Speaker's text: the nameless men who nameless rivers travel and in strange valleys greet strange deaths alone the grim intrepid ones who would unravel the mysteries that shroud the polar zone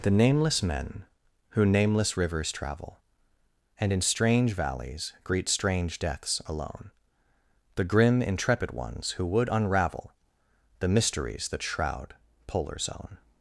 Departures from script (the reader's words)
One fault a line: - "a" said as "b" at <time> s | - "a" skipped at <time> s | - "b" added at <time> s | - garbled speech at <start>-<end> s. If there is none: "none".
- "the" skipped at 12.1 s